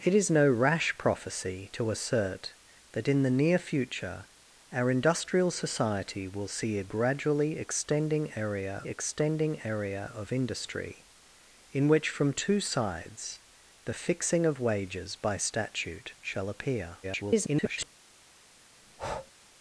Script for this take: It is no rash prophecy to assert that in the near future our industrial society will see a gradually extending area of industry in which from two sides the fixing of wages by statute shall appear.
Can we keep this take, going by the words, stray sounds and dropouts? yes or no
no